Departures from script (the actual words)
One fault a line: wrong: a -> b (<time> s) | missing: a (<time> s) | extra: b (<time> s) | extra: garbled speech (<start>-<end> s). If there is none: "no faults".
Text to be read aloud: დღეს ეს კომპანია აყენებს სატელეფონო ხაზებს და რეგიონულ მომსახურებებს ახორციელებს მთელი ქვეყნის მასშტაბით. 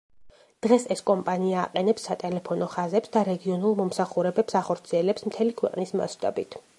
no faults